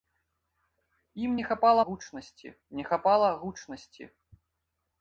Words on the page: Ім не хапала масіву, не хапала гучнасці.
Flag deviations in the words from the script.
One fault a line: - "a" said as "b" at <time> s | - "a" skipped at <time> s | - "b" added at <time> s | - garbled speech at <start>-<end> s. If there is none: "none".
- "масіву" said as "гучнасці" at 1.8 s